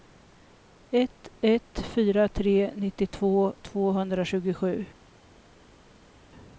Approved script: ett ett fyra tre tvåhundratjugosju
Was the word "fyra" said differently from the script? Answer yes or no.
no